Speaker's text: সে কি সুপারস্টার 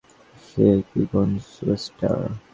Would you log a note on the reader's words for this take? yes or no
yes